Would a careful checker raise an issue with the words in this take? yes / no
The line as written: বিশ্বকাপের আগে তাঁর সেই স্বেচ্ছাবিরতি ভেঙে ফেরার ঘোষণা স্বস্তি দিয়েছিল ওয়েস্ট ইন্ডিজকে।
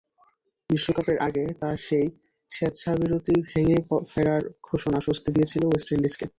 no